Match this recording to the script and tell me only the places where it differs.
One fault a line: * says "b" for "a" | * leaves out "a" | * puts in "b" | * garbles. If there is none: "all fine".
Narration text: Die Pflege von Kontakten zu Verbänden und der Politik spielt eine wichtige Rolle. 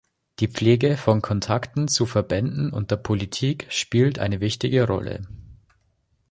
all fine